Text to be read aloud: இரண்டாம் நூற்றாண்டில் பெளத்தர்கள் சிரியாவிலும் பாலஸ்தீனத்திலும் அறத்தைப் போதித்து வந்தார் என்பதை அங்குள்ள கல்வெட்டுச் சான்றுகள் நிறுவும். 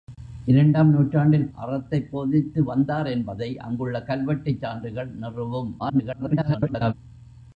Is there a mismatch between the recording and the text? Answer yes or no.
yes